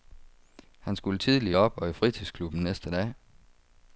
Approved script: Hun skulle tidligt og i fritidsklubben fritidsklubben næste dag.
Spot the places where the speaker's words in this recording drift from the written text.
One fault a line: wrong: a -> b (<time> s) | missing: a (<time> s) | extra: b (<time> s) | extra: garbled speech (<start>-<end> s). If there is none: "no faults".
wrong: Hun -> Han (0.8 s)
extra: op (1.5 s)
missing: fritidsklubben (2.6 s)